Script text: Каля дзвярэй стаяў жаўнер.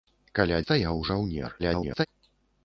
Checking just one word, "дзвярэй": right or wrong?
wrong